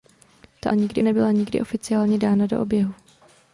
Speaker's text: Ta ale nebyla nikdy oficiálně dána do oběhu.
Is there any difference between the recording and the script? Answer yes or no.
yes